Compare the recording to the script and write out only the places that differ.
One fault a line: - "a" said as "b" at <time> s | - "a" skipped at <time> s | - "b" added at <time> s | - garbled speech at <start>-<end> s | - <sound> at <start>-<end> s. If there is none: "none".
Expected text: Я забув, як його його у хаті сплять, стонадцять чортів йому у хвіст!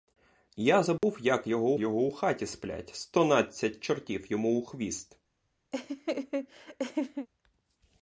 - dropout at 1.0-1.0 s
- laugh at 5.7-7.3 s